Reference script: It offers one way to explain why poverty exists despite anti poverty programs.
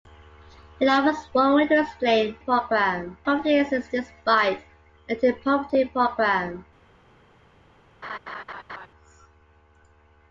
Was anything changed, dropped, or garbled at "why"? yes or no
yes